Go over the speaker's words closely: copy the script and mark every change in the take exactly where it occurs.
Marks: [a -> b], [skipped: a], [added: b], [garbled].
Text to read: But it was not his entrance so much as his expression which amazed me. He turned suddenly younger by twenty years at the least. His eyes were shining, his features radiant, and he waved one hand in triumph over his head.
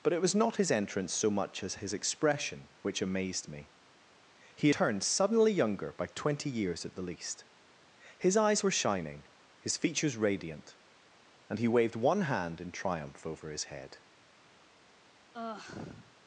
But it was not his entrance so much as his expression which amazed me. He turned suddenly younger by twenty years at the least. His eyes were shining, his features radiant, and he waved one hand in triumph over his head.